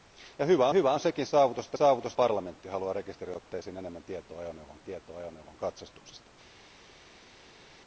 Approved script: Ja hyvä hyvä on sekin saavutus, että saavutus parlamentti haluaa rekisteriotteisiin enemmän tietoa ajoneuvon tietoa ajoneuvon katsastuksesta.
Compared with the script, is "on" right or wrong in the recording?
right